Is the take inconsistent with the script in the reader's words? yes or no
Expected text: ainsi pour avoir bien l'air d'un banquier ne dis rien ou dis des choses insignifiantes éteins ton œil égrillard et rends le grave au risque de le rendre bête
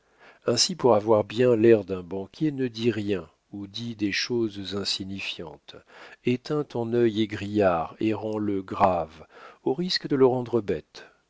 no